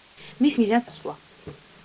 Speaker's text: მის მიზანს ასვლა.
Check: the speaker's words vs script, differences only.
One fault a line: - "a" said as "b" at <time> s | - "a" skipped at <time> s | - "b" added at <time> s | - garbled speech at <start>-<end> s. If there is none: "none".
none